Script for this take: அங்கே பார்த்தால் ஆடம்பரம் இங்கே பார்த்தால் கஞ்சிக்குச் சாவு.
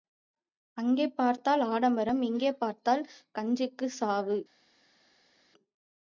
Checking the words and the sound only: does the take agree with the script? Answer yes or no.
yes